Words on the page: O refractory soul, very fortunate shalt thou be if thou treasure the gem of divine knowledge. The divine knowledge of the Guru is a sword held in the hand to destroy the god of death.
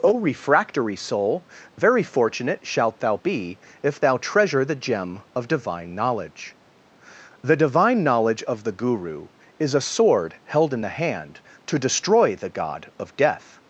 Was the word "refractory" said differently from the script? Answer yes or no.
no